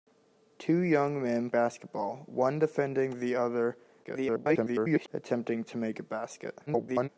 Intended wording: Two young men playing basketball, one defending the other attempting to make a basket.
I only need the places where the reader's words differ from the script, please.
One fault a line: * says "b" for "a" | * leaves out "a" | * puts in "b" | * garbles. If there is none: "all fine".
* leaves out "playing"
* garbles
* garbles